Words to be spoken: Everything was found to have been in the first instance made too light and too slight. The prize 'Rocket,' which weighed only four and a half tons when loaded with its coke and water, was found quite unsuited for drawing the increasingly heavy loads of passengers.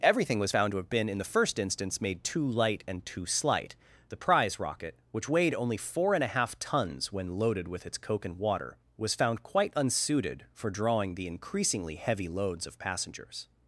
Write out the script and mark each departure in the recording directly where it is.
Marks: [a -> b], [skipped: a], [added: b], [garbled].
Everything was found to have been in the first instance made too light and too slight. The prize 'Rocket,' which weighed only four and a half tons when loaded with its coke and water, was found quite unsuited for drawing the increasingly heavy loads of passengers.